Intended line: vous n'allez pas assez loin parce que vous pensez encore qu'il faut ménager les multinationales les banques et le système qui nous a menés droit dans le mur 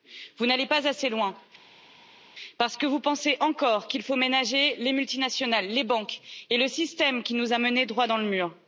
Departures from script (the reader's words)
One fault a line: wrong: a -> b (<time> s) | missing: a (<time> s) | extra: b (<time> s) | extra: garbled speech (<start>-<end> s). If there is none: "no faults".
no faults